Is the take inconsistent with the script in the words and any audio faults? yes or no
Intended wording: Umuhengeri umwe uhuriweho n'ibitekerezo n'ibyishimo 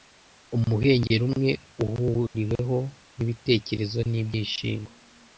yes